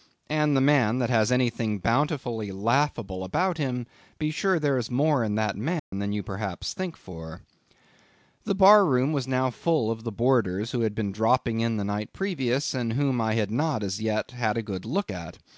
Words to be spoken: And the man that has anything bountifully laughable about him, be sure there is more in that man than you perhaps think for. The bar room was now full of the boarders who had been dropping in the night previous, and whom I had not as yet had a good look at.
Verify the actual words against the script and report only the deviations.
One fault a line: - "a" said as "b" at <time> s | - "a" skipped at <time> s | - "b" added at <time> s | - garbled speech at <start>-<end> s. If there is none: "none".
none